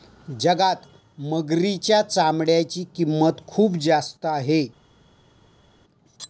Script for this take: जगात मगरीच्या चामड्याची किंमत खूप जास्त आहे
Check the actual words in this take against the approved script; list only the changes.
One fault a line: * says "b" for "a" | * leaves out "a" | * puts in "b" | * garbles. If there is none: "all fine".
all fine